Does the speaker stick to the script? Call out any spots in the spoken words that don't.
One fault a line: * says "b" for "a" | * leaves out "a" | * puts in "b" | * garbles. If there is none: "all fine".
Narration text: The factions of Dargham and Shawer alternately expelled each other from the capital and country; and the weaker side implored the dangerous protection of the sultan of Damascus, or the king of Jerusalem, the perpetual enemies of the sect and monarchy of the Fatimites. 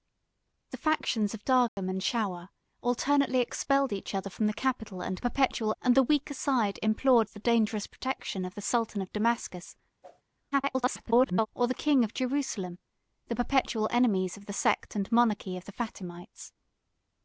* says "perpetual" for "country"
* garbles